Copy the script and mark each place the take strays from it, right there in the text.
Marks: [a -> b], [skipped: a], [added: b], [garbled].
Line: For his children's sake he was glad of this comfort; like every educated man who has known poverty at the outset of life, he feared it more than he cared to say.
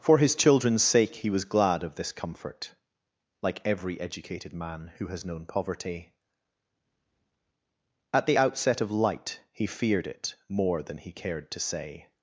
For his children's sake he was glad of this comfort; like every educated man who has known poverty at the outset of [life, -> light] he feared it more than he cared to say.